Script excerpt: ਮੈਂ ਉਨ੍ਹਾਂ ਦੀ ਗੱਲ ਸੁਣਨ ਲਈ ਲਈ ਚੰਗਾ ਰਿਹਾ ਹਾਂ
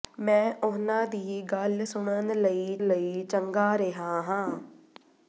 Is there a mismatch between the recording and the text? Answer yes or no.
no